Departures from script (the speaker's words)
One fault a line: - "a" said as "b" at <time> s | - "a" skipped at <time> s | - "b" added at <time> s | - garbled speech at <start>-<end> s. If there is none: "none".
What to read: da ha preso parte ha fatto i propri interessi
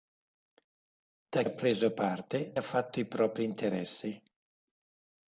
none